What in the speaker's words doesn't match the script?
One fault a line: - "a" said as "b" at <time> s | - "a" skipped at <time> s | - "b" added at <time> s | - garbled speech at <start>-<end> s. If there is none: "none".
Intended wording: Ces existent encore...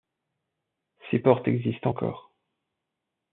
- "portes" added at 1.2 s